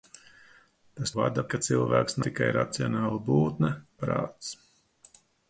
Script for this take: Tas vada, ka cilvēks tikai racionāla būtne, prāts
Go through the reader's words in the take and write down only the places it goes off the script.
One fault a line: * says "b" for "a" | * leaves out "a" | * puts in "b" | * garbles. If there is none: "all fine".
all fine